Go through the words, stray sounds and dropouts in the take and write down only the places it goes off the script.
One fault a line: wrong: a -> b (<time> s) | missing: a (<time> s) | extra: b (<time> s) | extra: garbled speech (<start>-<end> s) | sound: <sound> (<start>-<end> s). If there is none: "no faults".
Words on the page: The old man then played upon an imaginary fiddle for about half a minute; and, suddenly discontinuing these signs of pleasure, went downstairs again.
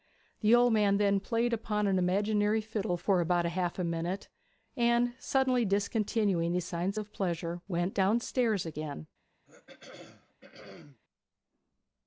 sound: throat clearing (9.4-11.0 s)